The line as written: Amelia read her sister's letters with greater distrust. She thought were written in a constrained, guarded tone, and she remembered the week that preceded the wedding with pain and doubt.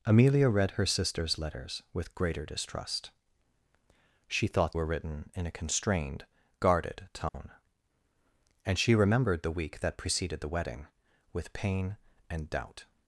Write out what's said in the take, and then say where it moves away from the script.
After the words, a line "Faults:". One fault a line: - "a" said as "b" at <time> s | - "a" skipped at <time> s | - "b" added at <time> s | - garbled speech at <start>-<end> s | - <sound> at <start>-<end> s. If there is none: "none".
Amelia read her sister's letters with greater distrust. She thought were written in a constrained, guarded tone, and she remembered the week that preceded the wedding with pain and doubt.
Faults:
- dropout at 7.3-7.3 s